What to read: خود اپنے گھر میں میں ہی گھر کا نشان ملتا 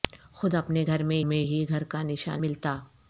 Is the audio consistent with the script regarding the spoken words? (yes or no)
yes